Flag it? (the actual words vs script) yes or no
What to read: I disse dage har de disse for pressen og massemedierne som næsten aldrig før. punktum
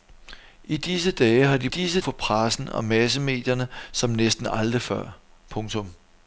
no